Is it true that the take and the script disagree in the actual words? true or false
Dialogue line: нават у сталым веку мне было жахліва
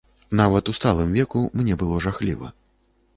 false